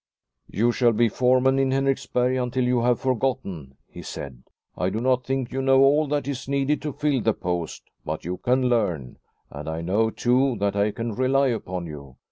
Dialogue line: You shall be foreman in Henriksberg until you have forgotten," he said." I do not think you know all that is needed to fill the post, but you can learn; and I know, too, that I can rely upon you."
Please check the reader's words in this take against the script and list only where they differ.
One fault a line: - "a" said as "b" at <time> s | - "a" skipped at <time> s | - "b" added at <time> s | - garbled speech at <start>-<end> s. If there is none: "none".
none